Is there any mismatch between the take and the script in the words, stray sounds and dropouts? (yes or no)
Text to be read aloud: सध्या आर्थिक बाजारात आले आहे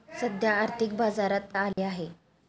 yes